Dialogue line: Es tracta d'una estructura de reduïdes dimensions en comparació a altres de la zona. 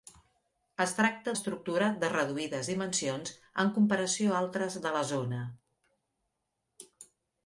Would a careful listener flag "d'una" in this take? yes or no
yes